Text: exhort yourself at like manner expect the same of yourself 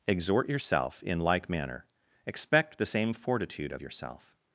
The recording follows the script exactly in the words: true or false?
false